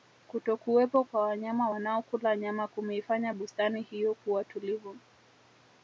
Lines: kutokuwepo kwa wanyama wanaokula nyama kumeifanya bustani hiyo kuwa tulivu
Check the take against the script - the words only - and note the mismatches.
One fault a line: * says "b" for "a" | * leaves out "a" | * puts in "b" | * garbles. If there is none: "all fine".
all fine